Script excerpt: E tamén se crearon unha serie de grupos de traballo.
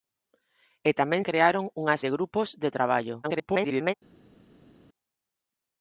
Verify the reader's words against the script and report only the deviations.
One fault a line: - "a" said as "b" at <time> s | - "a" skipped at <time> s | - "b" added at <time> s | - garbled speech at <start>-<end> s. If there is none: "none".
- "se" skipped at 1.2 s
- "serie" skipped at 2.0 s
- garbled speech at 3.2-3.9 s